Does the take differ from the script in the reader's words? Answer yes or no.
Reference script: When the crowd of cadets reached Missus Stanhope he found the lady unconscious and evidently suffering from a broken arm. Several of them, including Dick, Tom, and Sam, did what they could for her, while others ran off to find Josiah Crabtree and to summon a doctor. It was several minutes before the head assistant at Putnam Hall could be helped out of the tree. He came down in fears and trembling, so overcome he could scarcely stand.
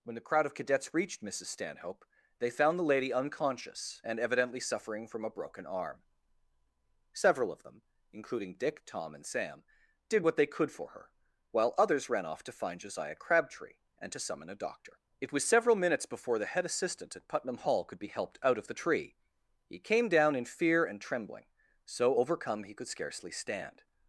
yes